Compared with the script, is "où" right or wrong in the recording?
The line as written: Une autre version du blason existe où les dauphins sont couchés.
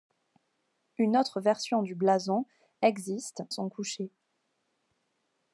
wrong